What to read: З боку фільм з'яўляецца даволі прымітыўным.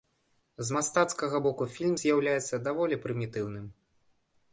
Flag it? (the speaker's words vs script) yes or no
yes